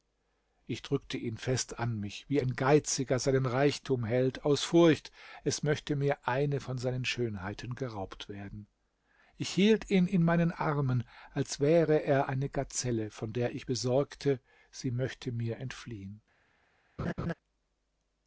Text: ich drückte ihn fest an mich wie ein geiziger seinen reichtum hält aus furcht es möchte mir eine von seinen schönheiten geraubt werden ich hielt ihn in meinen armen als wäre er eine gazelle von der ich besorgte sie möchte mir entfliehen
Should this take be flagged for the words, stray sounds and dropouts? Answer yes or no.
yes